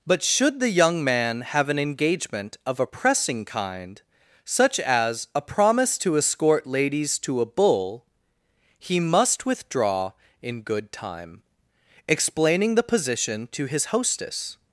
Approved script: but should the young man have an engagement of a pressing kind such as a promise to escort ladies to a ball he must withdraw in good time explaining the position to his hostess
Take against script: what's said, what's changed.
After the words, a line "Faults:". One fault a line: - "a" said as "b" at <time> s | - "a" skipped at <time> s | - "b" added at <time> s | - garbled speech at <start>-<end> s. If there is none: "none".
but should the young man have an engagement of a pressing kind such as a promise to escort ladies to a bull he must withdraw in good time explaining the position to his hostess
Faults:
- "ball" said as "bull" at 7.5 s